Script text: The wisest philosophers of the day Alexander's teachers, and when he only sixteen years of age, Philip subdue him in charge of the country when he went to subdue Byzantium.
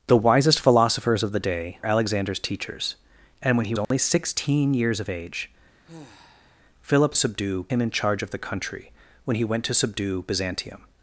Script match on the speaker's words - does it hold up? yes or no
yes